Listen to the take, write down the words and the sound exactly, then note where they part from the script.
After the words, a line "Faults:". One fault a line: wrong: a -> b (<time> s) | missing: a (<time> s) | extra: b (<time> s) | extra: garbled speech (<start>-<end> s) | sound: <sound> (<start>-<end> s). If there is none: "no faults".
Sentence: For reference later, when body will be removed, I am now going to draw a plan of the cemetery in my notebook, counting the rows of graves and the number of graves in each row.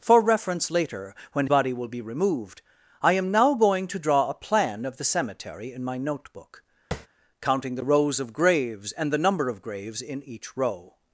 For reference later, when body will be removed, I am now going to draw a plan of the cemetery in my notebook, counting the rows of graves and the number of graves in each row.
Faults:
sound: tap (6.9-7.1 s)